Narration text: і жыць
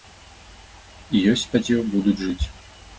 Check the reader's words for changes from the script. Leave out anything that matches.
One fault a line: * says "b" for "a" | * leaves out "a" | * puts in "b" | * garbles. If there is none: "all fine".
* puts in "ёсць спадзеў будуць"